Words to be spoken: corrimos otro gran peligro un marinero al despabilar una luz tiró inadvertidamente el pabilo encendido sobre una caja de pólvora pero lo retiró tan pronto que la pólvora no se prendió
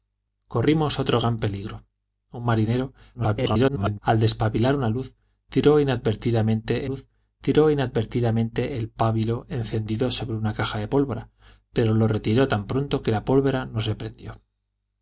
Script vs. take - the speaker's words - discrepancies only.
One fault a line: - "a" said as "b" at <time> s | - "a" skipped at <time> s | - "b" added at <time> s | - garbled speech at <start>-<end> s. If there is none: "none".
- garbled speech at 3.1-4.0 s
- "luz tiró inadvertidamente" added at 6.8 s